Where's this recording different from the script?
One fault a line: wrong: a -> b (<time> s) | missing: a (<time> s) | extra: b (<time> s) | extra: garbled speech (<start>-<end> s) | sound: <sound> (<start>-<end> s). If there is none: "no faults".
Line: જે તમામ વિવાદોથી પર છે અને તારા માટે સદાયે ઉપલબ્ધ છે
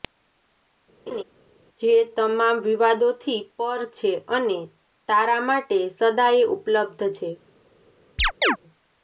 sound: laugh (1.1-1.2 s)
sound: chirp (8.2-8.6 s)